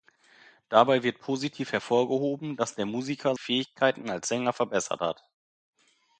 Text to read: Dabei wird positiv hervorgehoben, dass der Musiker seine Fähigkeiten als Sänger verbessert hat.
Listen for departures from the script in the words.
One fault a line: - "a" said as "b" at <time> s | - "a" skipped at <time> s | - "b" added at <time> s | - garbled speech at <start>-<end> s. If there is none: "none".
- "seine" skipped at 3.4 s